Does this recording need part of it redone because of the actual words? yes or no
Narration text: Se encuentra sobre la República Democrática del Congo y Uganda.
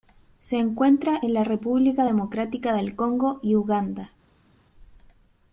yes